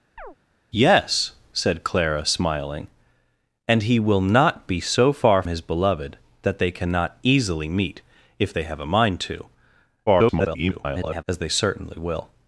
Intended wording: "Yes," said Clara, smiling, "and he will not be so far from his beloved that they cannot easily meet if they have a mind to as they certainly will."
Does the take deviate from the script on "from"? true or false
true